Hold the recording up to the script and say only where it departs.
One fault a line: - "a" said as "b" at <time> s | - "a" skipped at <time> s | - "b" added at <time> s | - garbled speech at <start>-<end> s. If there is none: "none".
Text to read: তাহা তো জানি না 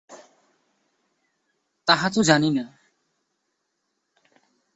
none